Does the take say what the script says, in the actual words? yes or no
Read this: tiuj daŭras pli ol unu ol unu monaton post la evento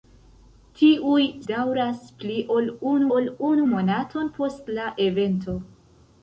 yes